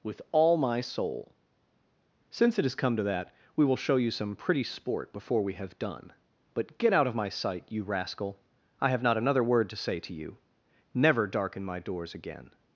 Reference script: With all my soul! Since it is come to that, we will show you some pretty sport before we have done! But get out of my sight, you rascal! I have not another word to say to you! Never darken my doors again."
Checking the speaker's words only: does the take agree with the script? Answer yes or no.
no